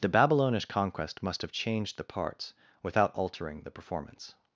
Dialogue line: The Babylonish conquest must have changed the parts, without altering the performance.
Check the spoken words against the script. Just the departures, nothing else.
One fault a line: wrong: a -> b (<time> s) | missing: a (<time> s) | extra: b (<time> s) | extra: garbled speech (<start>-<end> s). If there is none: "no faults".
no faults